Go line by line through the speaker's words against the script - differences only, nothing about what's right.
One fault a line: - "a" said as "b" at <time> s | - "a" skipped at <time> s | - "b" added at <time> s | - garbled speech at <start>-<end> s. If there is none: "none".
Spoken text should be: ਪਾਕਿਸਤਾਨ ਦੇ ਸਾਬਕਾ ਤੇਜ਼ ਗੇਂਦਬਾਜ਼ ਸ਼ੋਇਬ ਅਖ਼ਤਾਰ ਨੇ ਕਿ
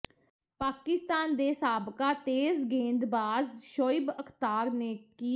none